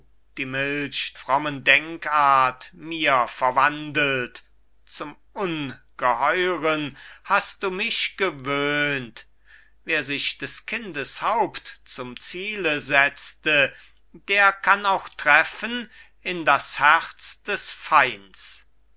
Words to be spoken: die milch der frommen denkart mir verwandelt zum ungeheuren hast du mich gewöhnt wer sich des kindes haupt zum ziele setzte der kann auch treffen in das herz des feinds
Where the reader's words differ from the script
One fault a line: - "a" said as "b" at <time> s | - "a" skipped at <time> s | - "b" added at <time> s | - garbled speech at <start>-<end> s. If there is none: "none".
- "der" skipped at 1.1 s